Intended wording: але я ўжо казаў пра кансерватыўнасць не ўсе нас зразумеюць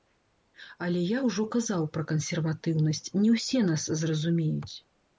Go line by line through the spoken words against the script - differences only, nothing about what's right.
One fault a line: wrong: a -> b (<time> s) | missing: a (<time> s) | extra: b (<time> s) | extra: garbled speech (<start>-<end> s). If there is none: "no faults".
no faults